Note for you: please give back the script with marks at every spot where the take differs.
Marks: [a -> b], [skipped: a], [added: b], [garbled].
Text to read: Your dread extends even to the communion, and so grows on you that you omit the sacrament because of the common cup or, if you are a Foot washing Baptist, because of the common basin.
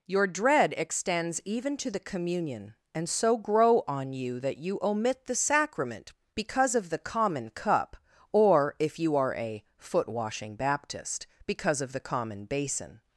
Your dread extends even to the communion, and so [grows -> grow] on you that you omit the sacrament because of the common cup or, if you are a Foot washing Baptist, because of the common basin.